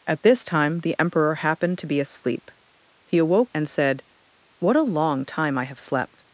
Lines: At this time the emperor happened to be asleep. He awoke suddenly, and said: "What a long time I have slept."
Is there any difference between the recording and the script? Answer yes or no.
yes